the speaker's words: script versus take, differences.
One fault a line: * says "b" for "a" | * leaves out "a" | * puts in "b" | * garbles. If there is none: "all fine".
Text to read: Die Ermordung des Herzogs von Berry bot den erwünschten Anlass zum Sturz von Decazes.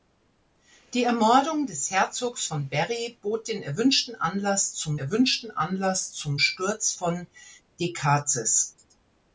* puts in "erwünschten Anlass zum"